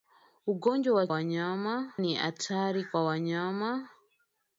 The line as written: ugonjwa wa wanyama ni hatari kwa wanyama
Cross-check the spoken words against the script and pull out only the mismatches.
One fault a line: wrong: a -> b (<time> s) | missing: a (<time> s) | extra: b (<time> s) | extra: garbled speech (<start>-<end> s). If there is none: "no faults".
no faults